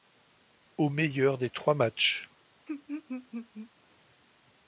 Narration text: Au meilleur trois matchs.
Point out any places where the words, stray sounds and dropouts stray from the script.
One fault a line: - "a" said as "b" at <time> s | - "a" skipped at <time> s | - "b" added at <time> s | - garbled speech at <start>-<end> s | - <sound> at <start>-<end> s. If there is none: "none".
- "des" added at 1.4 s
- laugh at 2.7-3.7 s